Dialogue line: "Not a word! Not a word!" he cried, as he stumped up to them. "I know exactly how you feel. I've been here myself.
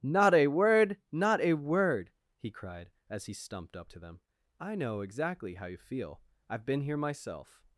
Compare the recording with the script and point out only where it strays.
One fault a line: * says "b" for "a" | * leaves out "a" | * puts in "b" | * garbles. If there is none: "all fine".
all fine